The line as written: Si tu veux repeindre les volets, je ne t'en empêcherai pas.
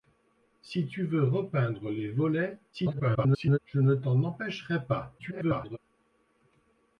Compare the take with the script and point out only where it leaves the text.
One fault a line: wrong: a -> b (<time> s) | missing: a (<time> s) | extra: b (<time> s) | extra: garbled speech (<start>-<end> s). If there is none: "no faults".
extra: garbled speech (2.7-3.6 s)
extra: garbled speech (5.2-5.8 s)